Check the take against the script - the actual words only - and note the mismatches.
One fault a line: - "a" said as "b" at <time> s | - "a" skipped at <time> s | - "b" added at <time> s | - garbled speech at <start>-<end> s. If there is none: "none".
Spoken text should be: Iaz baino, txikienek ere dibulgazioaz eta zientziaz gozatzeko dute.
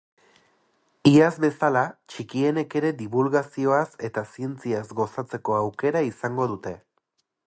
- "baino" said as "bezala" at 1.4 s
- "aukera izango" added at 5.6 s